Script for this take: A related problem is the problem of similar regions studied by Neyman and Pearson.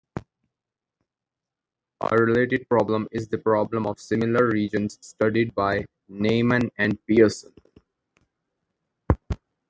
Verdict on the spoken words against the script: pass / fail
pass